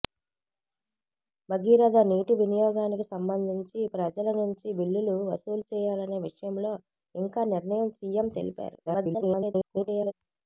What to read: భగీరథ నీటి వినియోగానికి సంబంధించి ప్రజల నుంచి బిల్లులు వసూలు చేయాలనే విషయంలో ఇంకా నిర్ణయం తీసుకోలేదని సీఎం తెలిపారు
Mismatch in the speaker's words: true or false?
true